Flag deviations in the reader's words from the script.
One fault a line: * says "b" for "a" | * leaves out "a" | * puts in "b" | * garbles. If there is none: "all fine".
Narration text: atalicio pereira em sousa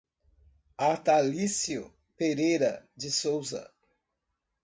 * says "de" for "em"